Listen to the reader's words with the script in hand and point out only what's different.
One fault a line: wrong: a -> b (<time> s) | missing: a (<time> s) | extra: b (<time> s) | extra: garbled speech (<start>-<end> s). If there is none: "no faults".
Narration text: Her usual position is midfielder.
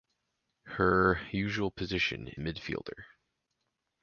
missing: is (2.3 s)